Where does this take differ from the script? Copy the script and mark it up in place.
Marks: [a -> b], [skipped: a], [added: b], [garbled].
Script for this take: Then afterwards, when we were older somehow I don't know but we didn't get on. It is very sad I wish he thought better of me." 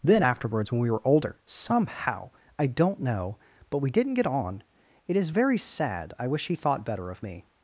Then afterwards, when we were older somehow I don't know but we didn't get on. It is very sad I wish he thought better of me."